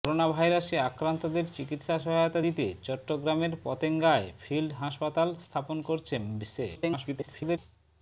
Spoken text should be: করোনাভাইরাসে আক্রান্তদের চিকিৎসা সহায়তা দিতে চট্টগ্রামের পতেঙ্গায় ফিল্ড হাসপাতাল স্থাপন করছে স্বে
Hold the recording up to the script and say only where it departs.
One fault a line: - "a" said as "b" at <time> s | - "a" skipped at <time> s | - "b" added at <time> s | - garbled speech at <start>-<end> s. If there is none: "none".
- garbled speech at 6.8-7.6 s